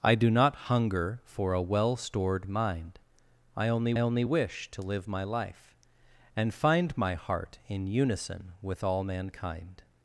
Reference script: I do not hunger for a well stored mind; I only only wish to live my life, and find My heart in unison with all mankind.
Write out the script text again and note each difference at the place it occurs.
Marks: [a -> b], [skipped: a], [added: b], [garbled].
I do not hunger for a well stored mind; I only only wish to live my life, and find My heart in unison with all mankind.